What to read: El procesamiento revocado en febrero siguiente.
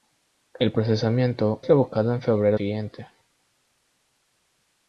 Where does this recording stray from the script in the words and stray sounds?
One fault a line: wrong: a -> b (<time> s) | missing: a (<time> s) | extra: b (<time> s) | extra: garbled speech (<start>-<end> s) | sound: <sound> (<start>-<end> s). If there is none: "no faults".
no faults